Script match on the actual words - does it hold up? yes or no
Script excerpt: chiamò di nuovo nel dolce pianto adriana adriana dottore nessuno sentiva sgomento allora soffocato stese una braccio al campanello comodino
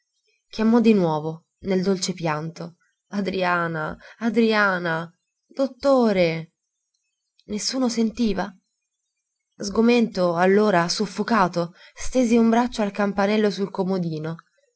no